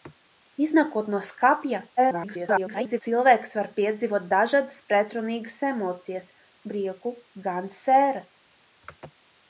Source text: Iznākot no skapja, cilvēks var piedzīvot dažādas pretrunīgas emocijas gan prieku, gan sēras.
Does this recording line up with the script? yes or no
no